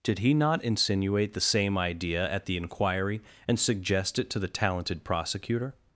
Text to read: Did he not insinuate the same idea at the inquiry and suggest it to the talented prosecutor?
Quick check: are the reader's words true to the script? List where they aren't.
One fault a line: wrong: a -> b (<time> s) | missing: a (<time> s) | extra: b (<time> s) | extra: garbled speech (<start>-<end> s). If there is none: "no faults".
no faults